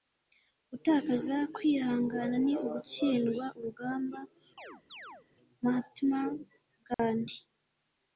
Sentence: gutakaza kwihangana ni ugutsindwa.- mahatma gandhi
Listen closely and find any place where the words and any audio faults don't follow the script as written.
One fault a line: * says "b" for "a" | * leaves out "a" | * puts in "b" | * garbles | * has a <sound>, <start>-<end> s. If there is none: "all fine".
* puts in "urugamba"
* has a chirp, 4.6-5.3 s
* has a dropout, 6.9-7.0 s